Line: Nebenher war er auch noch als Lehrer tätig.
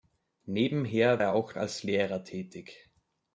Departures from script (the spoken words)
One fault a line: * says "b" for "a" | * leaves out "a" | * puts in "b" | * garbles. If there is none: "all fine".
* leaves out "war"
* leaves out "noch"